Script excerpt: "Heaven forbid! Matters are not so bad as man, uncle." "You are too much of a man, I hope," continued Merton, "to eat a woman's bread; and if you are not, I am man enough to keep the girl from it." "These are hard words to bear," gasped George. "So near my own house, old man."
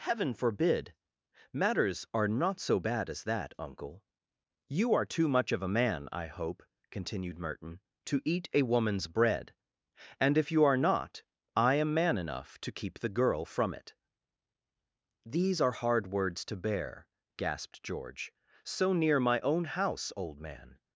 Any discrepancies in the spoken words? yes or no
yes